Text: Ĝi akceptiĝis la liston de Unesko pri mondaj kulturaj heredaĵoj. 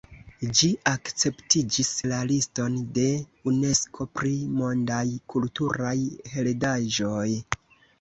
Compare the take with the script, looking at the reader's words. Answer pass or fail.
pass